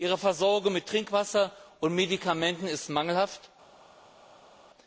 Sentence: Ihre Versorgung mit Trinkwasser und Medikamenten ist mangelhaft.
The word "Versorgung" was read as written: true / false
true